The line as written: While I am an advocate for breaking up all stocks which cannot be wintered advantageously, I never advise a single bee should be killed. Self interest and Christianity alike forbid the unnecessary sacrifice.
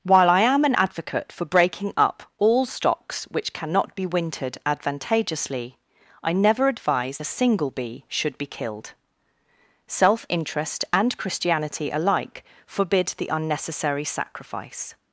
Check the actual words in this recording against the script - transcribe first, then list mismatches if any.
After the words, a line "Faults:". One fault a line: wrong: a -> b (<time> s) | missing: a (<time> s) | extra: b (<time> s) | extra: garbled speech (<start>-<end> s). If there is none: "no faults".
While I am an advocate for breaking up all stocks which cannot be wintered advantageously, I never advise a single bee should be killed. Self interest and Christianity alike forbid the unnecessary sacrifice.
Faults:
no faults